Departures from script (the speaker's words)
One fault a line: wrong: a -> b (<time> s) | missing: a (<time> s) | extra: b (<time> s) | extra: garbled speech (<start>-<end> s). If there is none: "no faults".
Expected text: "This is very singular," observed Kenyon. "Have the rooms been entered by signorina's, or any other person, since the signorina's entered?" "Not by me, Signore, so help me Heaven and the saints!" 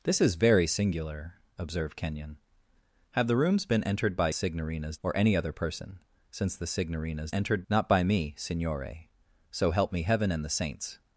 no faults